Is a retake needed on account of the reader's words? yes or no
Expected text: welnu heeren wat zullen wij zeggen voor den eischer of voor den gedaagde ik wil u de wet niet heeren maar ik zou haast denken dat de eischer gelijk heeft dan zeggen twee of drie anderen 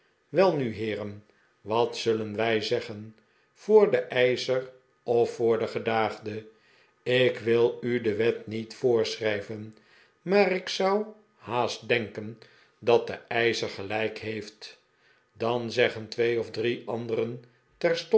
yes